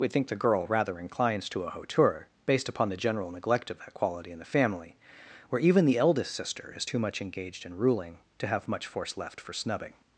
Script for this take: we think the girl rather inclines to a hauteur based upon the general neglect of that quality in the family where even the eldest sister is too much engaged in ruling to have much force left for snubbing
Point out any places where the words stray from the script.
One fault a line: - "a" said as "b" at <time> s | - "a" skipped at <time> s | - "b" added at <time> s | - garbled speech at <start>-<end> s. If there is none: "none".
none